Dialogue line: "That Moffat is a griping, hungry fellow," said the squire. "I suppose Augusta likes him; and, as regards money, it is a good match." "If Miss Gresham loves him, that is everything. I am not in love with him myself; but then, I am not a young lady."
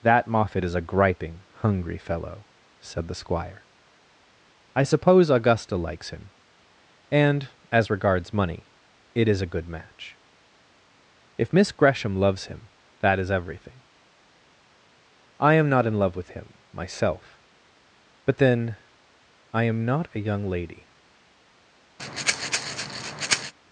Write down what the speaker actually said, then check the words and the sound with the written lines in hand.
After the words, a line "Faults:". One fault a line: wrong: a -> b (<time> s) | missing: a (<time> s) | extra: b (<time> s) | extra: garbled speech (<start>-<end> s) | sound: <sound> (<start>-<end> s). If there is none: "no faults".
"That Moffat is a griping, hungry fellow," said the squire. "I suppose Augusta likes him; and, as regards money, it is a good match." "If Miss Gresham loves him, that is everything. I am not in love with him myself; but then, I am not a young lady."
Faults:
sound: breath (22.0-23.5 s)